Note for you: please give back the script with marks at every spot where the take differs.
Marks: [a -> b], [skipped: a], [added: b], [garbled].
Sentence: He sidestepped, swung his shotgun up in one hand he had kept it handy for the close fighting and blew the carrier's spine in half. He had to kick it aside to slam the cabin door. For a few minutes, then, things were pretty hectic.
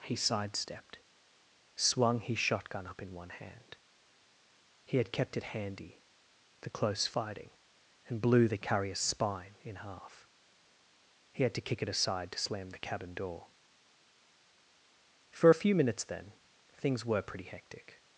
He sidestepped, swung his shotgun up in one hand he had kept it handy [skipped: for] the close fighting and blew the carrier's spine in half. He had to kick it aside to slam the cabin door. For a few minutes, then, things were pretty hectic.